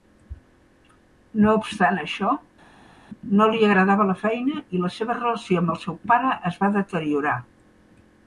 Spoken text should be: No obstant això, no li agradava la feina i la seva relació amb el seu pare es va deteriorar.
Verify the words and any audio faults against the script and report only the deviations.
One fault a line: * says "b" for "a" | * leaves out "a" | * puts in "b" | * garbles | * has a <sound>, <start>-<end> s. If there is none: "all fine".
all fine